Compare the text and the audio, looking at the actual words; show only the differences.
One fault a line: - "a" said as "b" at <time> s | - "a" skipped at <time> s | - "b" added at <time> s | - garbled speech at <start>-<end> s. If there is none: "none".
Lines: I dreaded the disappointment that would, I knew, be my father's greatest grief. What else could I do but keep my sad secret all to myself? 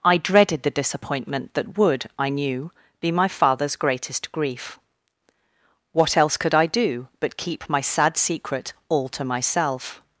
none